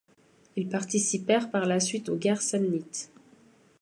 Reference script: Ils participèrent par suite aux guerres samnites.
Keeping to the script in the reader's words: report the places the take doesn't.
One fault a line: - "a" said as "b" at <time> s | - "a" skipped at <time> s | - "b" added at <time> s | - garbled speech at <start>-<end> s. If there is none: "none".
- "la" added at 1.7 s